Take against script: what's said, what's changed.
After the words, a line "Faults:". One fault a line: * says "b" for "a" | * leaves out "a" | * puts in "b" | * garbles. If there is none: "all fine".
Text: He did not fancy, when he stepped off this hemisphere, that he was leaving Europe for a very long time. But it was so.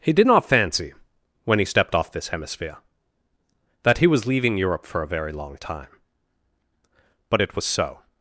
He did not fancy, when he stepped off this hemisphere, that he was leaving Europe for a very long time. But it was so.
Faults:
all fine